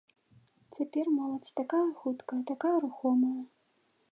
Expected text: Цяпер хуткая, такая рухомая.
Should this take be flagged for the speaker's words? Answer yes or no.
yes